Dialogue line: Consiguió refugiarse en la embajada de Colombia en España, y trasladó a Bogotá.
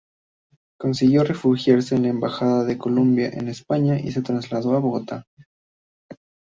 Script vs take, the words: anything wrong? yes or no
yes